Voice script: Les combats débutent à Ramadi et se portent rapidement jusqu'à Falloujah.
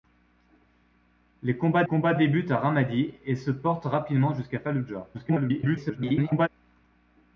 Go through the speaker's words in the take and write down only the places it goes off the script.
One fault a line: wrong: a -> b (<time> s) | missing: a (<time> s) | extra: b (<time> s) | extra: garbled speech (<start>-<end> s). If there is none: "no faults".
extra: combats (1.8 s)
extra: garbled speech (5.1-6.5 s)